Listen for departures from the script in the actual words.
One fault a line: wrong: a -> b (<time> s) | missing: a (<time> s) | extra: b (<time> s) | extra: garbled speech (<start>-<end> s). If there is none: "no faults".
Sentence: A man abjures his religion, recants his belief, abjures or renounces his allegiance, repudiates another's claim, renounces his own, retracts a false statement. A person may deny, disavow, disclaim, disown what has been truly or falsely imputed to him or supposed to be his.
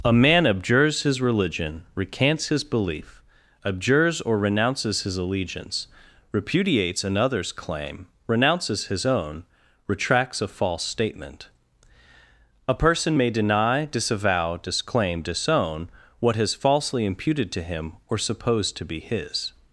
missing: been truly or (16.5 s)